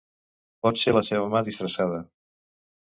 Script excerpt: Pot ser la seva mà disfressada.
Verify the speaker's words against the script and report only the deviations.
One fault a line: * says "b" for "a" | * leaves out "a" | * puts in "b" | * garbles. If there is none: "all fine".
all fine